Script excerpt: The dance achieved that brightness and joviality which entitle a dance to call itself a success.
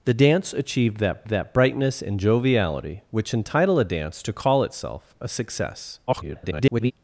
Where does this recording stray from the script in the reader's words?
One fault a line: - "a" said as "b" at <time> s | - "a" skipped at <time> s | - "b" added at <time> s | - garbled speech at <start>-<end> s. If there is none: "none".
- "that" added at 1.3 s
- garbled speech at 6.1-6.9 s